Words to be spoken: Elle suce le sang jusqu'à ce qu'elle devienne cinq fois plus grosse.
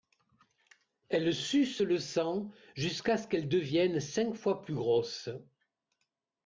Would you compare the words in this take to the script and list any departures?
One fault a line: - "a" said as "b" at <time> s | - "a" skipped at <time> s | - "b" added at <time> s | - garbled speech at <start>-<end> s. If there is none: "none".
none